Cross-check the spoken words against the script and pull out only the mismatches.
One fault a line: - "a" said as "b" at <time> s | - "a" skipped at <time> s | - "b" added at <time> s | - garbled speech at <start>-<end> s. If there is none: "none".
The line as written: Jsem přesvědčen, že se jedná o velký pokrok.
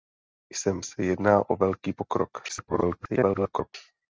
- "přesvědčen že" skipped at 0.8 s
- garbled speech at 2.5-3.7 s